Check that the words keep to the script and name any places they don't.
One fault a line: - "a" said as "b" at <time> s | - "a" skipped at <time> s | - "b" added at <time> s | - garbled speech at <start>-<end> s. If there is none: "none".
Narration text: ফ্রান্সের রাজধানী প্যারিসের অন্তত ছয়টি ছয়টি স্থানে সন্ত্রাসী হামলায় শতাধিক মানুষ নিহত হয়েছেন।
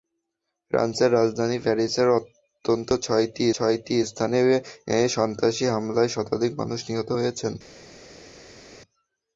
none